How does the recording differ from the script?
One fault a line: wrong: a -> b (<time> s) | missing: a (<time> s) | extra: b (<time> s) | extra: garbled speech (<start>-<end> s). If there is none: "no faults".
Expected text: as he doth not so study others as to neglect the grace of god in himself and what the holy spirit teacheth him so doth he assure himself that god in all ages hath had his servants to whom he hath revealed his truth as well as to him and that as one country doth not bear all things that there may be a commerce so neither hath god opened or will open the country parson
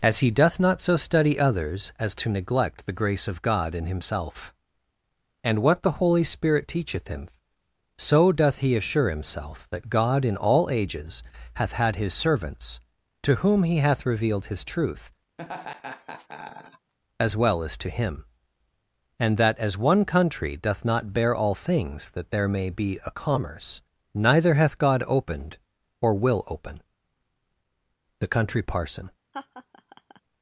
missing: so (23.8 s)